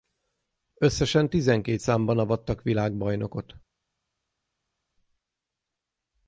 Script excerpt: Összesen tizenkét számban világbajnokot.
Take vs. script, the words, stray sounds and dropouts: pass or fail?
fail